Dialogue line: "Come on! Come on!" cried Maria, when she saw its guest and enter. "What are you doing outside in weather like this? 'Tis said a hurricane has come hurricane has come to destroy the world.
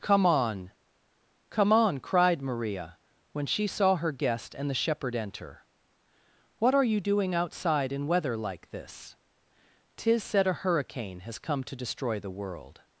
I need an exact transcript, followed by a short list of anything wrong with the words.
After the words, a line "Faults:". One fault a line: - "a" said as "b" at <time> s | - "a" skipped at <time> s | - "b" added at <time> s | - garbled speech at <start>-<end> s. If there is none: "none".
"Come on! Come on!" cried Maria, when she saw her guest and the shepherd enter. "What are you doing outside in weather like this? 'Tis said a hurricane has come to destroy the world.
Faults:
- "its" said as "her" at 4.0 s
- "the shepherd" added at 4.7 s
- "hurricane has come" skipped at 11.6 s